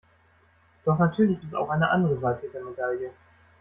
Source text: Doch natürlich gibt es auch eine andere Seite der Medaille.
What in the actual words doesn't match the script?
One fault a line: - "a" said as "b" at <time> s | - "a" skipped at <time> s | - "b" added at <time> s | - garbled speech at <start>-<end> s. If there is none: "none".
- "gibt" skipped at 1.4 s